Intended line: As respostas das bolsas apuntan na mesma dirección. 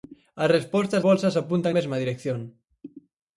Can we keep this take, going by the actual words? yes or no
no